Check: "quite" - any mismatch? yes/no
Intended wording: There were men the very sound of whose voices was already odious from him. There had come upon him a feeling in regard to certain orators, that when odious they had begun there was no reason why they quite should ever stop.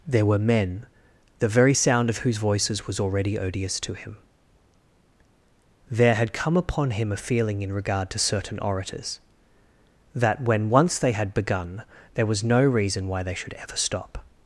yes